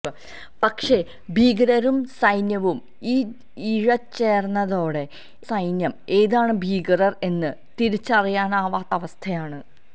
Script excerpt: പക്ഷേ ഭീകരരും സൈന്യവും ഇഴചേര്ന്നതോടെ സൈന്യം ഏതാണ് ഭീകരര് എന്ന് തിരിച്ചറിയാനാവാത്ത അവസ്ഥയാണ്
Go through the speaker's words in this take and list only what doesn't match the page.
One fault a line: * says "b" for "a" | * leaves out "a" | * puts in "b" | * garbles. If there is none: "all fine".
all fine